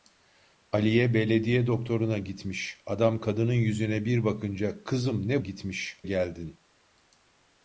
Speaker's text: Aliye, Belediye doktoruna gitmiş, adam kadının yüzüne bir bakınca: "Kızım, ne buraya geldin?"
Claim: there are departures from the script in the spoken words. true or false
true